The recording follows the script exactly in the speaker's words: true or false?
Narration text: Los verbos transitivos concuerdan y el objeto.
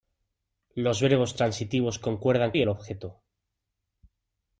true